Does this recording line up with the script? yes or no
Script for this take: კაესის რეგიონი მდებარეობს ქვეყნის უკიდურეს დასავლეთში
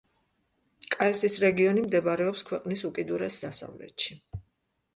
yes